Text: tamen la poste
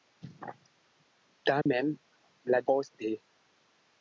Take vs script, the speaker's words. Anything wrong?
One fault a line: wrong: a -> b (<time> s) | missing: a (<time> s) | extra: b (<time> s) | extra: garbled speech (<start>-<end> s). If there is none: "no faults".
no faults